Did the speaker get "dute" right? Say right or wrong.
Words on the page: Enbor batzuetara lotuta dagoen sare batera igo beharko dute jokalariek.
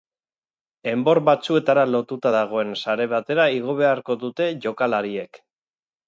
right